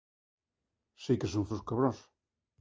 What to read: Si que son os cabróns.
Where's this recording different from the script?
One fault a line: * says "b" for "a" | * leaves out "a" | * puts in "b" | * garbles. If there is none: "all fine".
all fine